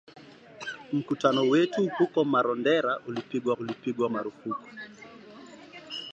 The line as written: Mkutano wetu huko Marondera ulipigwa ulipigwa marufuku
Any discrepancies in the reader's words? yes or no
no